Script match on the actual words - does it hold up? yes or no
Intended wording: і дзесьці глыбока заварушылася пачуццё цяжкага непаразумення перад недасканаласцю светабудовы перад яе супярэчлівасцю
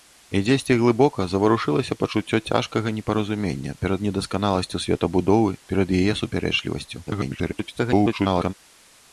no